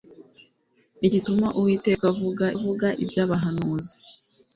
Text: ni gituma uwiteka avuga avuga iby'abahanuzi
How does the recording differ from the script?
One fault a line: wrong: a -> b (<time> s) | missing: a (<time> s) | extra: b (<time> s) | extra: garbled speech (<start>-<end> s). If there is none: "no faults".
no faults